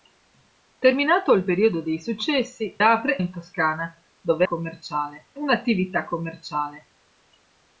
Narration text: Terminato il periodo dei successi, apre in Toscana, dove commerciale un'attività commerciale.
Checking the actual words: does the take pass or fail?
pass